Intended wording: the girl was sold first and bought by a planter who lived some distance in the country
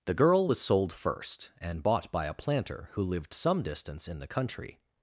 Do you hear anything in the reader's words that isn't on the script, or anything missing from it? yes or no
no